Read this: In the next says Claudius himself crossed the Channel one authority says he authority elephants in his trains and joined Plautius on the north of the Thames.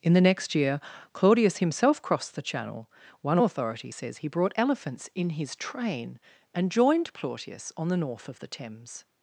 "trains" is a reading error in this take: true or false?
true